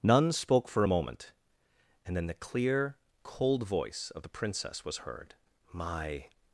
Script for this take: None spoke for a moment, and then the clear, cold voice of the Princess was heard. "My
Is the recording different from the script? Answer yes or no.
no